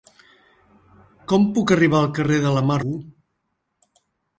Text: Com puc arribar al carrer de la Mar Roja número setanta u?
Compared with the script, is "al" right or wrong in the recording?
right